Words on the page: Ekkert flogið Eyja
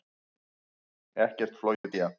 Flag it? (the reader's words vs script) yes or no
no